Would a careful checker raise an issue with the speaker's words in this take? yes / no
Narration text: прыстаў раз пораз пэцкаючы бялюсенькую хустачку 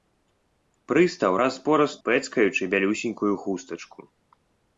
no